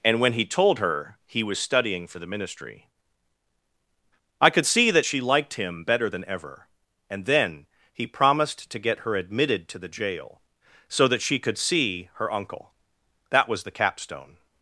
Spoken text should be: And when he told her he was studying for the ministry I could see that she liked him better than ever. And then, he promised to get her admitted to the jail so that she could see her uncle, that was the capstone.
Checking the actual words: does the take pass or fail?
pass